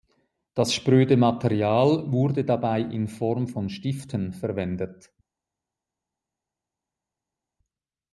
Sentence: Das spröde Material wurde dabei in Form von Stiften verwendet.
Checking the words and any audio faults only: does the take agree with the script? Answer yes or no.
yes